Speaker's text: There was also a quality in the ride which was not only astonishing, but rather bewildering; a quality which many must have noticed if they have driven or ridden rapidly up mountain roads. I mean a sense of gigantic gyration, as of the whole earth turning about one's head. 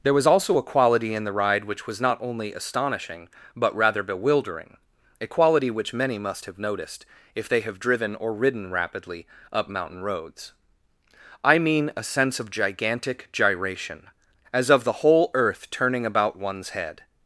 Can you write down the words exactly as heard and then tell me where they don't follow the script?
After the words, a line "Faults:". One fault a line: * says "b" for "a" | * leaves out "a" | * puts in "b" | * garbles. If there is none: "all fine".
There was also a quality in the ride which was not only astonishing, but rather bewildering; a quality which many must have noticed if they have driven or ridden rapidly up mountain roads. I mean a sense of gigantic gyration, as of the whole earth turning about one's head.
Faults:
all fine